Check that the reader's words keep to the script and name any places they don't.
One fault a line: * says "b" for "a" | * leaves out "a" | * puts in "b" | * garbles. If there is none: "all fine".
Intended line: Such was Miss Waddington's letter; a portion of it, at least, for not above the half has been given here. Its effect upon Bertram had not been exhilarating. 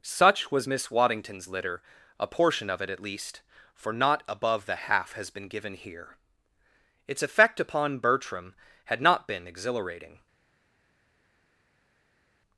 * says "litter" for "letter"